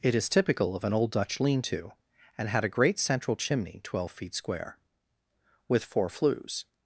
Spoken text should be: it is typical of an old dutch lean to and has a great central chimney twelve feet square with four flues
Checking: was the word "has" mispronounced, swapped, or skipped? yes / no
yes